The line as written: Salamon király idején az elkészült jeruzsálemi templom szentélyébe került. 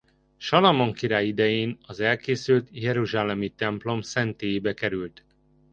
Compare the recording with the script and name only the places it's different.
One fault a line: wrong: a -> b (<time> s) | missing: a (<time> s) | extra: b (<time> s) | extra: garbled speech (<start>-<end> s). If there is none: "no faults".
no faults